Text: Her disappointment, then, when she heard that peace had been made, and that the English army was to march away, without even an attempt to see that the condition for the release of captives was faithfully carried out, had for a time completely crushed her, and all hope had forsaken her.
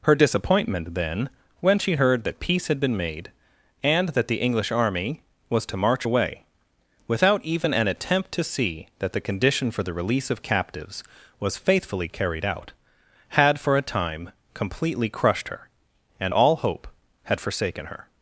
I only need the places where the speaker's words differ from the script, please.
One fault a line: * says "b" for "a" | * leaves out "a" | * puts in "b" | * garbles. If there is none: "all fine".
all fine